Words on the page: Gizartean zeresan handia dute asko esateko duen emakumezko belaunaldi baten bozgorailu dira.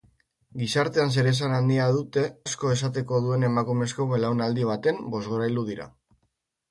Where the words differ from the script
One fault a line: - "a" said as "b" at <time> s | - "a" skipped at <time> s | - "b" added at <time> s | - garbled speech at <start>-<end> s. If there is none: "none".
none